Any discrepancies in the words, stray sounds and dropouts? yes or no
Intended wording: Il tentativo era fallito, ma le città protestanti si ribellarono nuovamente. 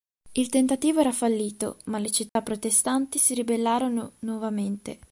yes